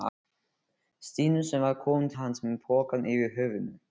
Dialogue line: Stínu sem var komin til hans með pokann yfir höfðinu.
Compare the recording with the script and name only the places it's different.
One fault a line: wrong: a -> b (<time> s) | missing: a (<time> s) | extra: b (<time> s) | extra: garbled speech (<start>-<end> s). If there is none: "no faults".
missing: til (2.1 s)